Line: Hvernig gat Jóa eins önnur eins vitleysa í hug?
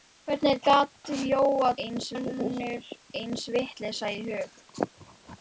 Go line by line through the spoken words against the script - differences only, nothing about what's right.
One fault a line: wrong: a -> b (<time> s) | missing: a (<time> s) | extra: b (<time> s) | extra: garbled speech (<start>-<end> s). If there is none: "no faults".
no faults